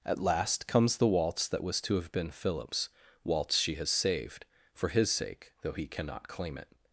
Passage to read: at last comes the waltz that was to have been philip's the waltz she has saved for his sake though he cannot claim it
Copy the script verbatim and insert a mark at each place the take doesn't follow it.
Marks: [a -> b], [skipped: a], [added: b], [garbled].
at last comes the waltz that was to have been philip's [skipped: the] waltz she has saved for his sake though he cannot claim it